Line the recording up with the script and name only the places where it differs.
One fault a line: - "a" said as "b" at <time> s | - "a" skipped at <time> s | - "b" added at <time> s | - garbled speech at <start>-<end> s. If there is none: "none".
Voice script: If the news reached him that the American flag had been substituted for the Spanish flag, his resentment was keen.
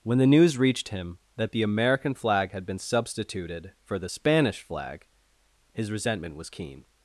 - "If" said as "When" at 0.0 s